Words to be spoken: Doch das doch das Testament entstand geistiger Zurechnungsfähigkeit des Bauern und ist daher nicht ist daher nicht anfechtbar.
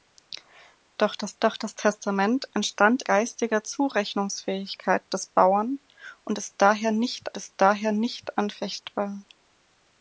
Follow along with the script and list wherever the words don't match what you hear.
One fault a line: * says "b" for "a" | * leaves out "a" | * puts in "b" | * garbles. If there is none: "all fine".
all fine